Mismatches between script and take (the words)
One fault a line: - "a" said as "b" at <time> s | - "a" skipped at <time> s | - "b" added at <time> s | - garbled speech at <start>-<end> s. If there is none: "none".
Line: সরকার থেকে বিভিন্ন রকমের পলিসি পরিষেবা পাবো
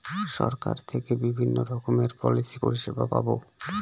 none